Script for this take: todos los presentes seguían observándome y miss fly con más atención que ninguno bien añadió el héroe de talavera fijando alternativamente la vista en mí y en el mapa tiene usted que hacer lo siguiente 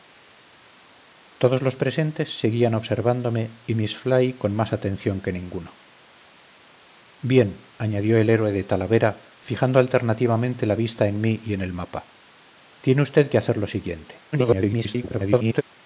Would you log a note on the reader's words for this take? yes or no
yes